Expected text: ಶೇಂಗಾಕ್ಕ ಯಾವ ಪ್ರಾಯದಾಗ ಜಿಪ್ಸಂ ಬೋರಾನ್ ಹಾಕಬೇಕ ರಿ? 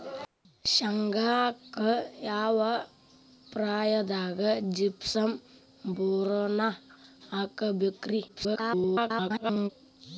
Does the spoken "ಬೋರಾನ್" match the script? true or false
true